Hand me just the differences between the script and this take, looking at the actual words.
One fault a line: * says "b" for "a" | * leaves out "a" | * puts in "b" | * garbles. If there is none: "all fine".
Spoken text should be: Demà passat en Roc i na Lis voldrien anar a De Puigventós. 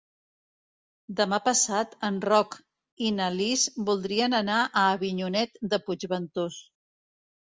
* puts in "Avinyonet"